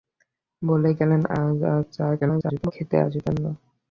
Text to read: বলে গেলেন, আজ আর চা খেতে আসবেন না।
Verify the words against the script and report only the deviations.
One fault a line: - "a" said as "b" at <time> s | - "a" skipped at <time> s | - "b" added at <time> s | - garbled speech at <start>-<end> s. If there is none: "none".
- garbled speech at 2.2-2.7 s